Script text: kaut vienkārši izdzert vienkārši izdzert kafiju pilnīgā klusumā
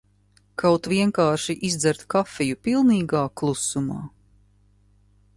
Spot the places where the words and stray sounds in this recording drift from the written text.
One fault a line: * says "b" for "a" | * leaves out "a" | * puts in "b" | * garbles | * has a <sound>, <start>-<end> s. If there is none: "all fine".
* leaves out "vienkārši izdzert"